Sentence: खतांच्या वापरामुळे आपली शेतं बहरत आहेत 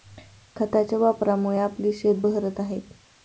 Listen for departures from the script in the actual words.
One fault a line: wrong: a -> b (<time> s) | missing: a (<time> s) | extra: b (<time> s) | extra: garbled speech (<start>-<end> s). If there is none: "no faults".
no faults